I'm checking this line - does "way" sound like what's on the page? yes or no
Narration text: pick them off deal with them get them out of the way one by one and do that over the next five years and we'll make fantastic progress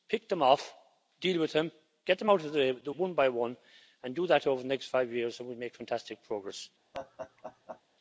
no